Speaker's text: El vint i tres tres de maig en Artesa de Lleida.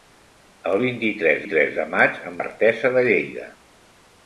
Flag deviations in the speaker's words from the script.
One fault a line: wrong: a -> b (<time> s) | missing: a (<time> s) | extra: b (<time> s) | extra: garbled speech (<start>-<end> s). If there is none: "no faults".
no faults